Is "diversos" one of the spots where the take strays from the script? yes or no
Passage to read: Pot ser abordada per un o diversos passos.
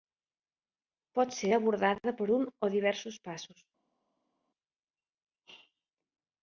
no